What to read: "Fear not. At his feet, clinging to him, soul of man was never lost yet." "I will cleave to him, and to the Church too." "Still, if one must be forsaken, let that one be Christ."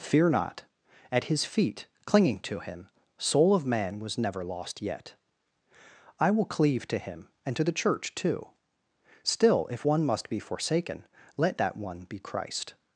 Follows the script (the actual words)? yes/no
yes